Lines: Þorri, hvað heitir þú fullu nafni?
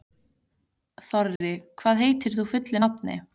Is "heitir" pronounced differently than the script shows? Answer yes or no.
no